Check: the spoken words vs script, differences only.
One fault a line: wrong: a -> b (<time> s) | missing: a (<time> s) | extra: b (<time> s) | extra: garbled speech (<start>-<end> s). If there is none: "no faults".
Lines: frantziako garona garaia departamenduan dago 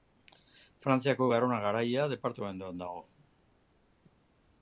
no faults